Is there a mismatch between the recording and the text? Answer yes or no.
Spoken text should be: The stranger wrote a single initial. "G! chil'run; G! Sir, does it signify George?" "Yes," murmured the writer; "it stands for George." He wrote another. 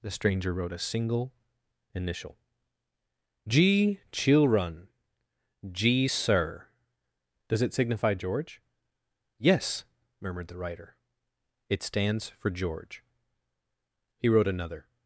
no